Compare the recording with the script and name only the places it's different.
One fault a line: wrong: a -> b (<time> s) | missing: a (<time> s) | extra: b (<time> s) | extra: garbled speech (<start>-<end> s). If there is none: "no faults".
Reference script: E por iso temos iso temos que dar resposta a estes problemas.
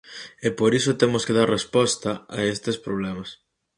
missing: iso temos (1.2 s)